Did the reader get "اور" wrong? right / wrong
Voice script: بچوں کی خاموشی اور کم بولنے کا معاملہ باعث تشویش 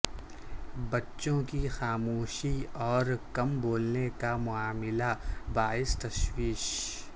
right